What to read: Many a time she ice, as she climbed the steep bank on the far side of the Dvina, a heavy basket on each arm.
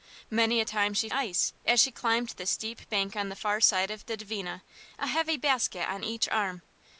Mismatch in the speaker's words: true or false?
false